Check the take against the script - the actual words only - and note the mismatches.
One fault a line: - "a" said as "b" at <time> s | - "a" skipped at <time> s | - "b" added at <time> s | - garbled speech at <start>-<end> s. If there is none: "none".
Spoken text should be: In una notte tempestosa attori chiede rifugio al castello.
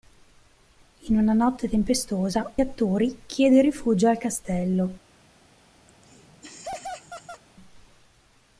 none